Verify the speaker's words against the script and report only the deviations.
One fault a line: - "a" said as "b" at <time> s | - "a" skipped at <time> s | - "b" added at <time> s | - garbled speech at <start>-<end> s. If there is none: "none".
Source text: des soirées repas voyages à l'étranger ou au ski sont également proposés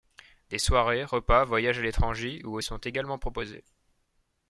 - "ski" skipped at 2.6 s